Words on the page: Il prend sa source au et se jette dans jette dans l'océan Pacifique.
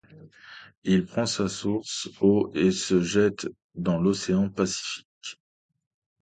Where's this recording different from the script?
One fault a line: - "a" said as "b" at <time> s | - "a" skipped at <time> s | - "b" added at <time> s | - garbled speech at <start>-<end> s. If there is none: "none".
- "jette dans" skipped at 4.0 s